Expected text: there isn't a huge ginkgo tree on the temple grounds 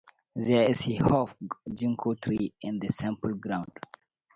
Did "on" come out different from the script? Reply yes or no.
yes